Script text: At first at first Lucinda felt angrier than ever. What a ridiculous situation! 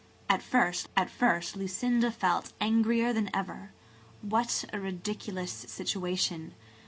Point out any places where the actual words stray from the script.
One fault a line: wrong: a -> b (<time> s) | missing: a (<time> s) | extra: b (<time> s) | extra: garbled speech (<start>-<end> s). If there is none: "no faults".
no faults